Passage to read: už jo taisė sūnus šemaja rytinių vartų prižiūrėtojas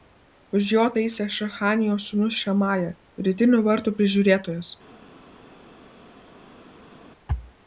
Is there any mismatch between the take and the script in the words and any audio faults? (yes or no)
yes